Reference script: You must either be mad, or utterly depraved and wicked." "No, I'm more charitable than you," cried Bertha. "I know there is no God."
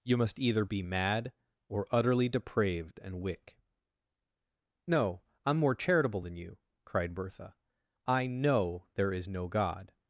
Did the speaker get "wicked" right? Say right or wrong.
wrong